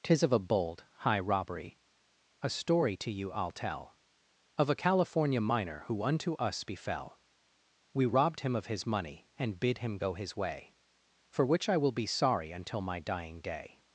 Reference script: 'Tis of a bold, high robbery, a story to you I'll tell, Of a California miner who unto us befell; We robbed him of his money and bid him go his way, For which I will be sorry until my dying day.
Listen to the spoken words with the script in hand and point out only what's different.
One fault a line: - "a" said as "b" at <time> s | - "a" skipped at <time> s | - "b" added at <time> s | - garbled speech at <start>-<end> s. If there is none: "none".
none